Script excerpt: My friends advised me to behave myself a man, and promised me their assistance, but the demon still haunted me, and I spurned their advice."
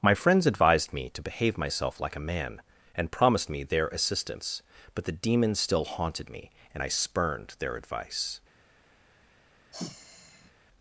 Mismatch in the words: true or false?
true